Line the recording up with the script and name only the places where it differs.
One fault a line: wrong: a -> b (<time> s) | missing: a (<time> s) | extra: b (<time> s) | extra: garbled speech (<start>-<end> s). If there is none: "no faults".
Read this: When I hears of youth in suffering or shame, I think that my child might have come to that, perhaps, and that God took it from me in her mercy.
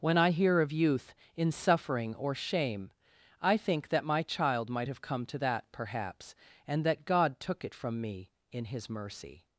wrong: hears -> hear (0.3 s)
wrong: her -> his (8.7 s)